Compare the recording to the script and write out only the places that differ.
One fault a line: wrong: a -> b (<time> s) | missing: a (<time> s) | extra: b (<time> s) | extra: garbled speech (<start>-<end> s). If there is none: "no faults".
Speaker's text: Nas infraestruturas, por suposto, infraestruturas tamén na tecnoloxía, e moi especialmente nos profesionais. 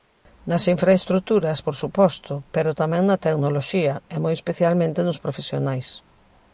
wrong: infraestruturas -> pero (2.5 s)